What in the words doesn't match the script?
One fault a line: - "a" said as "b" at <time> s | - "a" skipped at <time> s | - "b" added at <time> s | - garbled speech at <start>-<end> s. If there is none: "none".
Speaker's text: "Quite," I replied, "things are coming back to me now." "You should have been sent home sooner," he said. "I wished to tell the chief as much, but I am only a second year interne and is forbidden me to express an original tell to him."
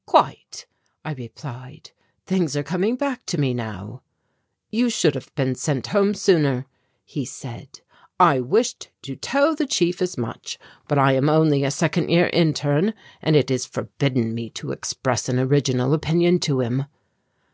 - "it" added at 13.3 s
- "tell" said as "opinion" at 15.9 s